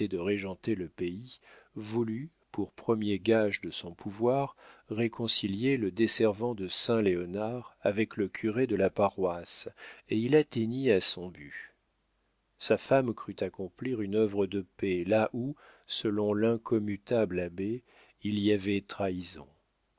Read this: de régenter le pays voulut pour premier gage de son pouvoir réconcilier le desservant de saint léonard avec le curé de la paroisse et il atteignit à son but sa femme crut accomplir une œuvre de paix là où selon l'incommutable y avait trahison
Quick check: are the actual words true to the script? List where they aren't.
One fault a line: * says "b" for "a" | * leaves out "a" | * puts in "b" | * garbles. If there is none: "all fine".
* puts in "abbé il"